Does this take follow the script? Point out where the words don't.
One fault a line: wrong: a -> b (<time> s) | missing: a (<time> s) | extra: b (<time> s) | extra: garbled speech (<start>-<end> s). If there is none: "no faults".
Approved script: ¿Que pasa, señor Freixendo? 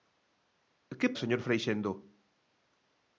missing: pasa (1.1 s)